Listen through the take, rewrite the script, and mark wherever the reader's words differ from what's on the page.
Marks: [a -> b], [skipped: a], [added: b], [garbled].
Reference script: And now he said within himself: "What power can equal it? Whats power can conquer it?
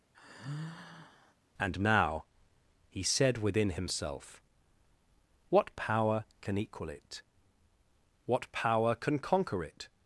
And now he said within himself: "What power can equal it? [Whats -> What] power can conquer it?